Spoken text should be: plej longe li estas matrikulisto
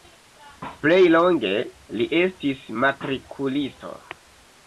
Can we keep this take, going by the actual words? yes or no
no